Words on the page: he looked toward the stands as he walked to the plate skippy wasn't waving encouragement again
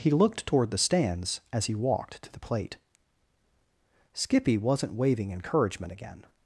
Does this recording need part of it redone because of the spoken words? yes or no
no